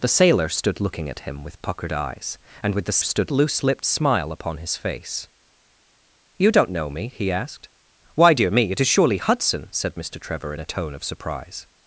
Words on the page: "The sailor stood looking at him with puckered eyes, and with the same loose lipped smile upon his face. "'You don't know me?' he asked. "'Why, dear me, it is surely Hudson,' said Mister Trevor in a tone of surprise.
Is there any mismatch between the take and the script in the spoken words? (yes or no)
yes